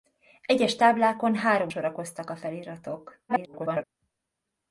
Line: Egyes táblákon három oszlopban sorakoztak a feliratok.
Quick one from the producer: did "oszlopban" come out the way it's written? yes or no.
no